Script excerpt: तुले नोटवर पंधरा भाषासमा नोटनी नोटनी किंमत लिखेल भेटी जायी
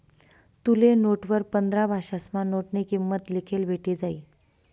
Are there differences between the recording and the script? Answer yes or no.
yes